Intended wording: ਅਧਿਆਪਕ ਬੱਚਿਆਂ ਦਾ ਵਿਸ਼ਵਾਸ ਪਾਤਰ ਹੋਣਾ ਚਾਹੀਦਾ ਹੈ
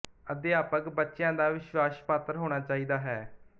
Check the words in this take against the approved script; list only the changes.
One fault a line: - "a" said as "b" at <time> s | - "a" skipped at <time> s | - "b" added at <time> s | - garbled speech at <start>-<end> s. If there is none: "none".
none